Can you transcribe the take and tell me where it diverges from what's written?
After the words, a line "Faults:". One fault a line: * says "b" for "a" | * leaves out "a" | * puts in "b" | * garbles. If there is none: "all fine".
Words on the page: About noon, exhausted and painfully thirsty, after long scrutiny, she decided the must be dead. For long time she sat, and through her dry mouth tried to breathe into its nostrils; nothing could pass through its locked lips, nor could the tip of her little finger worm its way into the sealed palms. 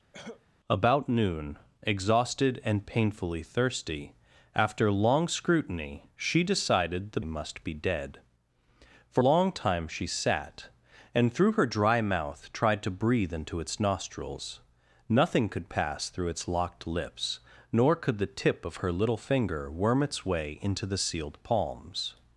About noon, exhausted and painfully thirsty, after long scrutiny, she decided the must be dead. For long time she sat, and through her dry mouth tried to breathe into its nostrils; nothing could pass through its locked lips, nor could the tip of her little finger worm its way into the sealed palms.
Faults:
all fine